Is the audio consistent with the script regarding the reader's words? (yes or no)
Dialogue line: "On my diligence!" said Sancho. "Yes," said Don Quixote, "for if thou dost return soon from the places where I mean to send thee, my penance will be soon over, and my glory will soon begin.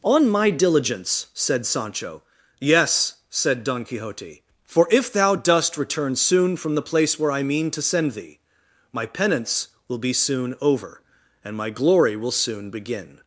no